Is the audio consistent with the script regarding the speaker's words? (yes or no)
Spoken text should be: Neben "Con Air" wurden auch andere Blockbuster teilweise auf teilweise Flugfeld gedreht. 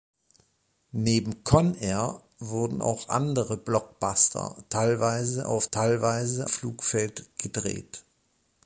yes